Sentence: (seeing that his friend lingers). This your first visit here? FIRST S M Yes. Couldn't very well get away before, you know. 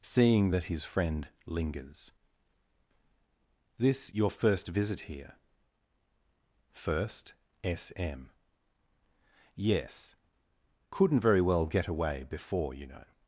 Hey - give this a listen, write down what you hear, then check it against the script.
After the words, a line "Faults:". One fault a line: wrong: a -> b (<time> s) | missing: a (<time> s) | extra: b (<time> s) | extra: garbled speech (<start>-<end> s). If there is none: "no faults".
(seeing that his friend lingers). This your first visit here? FIRST S M Yes. Couldn't very well get away before, you know.
Faults:
no faults